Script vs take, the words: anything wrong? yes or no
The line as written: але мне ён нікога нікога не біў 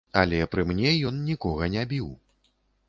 yes